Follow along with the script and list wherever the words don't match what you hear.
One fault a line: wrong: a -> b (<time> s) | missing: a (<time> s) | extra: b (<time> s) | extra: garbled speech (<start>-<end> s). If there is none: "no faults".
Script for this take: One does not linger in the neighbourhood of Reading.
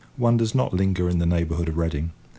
no faults